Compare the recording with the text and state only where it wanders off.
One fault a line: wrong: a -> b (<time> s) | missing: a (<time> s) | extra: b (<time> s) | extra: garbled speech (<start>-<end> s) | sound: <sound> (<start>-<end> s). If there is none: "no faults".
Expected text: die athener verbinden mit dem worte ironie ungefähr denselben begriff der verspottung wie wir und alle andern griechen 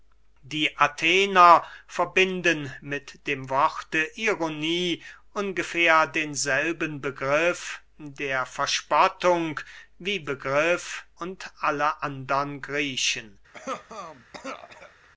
wrong: wir -> begriff (10.2 s)
sound: cough (13.5-15.1 s)